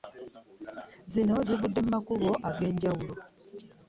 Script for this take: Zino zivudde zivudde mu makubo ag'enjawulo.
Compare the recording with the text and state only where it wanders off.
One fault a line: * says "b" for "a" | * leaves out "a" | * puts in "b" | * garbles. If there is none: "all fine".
* leaves out "zivudde"